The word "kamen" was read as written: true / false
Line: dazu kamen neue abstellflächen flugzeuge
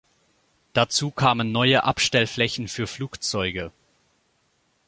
true